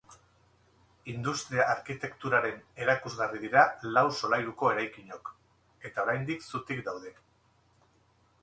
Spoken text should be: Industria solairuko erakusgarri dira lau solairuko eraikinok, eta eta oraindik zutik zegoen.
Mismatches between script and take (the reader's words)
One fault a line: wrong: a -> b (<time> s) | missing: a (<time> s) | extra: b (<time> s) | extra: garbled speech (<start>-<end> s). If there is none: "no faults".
wrong: solairuko -> arkitekturaren (1.7 s)
missing: eta (6.1 s)
wrong: zegoen -> daude (6.9 s)